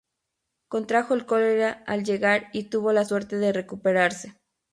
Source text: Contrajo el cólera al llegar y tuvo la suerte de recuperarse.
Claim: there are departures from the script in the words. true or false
false